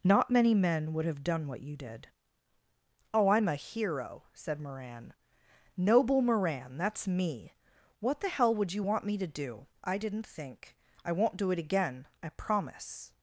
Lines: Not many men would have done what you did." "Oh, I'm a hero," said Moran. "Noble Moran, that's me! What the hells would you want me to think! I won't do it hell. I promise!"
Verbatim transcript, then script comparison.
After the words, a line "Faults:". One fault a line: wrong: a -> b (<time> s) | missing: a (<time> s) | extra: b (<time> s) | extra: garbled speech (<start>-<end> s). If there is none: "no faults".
Not many men would have done what you did." "Oh, I'm a hero," said Moran. "Noble Moran, that's me! What the hell would you want me to do? I didn't think! I won't do it again. I promise!"
Faults:
wrong: hells -> hell (8.3 s)
extra: do I didn't (9.3 s)
wrong: hell -> again (11.6 s)